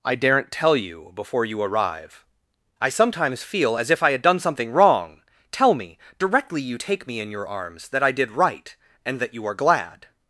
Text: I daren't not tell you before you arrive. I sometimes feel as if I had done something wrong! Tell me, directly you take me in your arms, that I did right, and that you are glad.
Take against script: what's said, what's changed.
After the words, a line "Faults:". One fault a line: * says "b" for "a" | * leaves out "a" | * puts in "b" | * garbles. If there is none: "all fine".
I daren't tell you before you arrive. I sometimes feel as if I had done something wrong! Tell me, directly you take me in your arms, that I did right, and that you are glad.
Faults:
* leaves out "not"